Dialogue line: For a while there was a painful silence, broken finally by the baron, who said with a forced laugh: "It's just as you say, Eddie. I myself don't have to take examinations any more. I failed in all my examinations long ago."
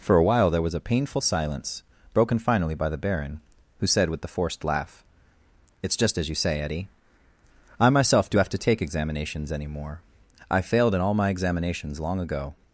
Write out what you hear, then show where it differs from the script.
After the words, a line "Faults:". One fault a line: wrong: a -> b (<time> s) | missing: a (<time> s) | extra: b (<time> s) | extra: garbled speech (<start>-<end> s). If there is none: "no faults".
For a while there was a painful silence, broken finally by the baron, who said with the forced laugh: "It's just as you say, Eddie. I myself do have to take examinations any more. I failed in all my examinations long ago."
Faults:
wrong: a -> the (4.2 s)
wrong: don't -> do (8.3 s)